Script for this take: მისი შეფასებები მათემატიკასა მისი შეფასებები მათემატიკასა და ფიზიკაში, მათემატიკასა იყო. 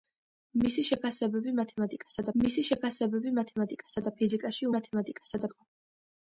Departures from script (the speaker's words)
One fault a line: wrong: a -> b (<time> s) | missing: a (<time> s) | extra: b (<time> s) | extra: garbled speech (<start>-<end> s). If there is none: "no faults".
no faults